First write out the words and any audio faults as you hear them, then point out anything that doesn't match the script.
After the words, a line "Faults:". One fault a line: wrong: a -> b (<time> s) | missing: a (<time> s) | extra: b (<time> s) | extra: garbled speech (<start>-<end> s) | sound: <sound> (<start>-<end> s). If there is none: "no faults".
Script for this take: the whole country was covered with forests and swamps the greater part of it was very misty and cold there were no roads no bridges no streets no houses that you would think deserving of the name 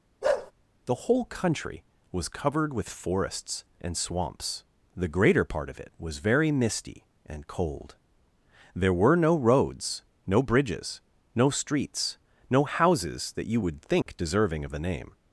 the whole country was covered with forests and swamps the greater part of it was very misty and cold there were no roads no bridges no streets no houses that you would think deserving of the name
Faults:
sound: bark (0.2-0.5 s)
sound: dropout (14.0-14.1 s)